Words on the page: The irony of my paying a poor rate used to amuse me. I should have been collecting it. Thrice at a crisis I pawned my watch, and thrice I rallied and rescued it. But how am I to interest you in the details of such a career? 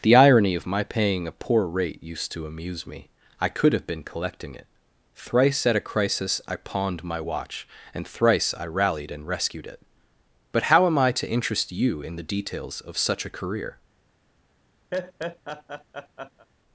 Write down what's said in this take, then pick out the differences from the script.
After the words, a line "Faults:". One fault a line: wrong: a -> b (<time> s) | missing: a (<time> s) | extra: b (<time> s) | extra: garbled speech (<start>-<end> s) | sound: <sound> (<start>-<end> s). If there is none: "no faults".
The irony of my paying a poor rate used to amuse me. I could have been collecting it. Thrice at a crisis I pawned my watch, and thrice I rallied and rescued it. But how am I to interest you in the details of such a career?
Faults:
wrong: should -> could (3.5 s)
sound: laugh (14.9-16.5 s)